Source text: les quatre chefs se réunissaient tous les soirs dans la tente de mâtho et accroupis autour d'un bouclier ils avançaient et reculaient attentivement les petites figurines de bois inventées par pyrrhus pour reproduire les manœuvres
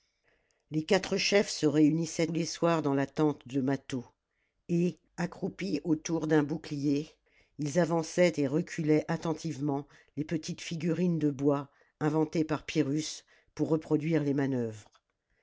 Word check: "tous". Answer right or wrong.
wrong